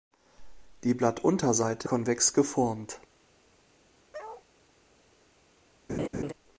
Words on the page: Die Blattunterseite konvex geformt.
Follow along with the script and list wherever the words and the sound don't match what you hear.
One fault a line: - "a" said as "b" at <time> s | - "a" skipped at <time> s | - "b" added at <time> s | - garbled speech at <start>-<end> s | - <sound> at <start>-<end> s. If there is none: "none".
- bark at 4.1-4.5 s
- laugh at 5.9-6.3 s